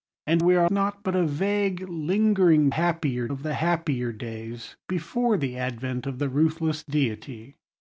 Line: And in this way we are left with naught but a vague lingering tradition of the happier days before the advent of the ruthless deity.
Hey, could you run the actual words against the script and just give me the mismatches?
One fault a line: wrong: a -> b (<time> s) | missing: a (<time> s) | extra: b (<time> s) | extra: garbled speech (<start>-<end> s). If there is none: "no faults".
missing: in this way (0.4 s)
missing: left with (0.7 s)
wrong: tradition -> happier (2.7 s)